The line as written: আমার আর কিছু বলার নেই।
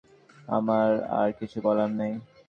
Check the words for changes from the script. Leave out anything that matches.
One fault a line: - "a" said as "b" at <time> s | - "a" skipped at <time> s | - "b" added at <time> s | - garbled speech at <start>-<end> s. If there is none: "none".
none